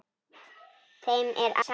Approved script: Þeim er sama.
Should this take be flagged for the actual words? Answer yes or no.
no